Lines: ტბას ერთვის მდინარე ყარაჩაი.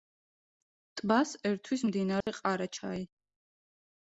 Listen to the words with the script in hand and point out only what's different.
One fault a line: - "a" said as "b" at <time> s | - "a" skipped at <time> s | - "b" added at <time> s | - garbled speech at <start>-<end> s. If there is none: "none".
none